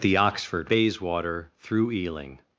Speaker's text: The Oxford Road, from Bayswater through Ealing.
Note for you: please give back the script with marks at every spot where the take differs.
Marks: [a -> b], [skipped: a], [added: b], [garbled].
The Oxford [skipped: Road, from] Bayswater through Ealing.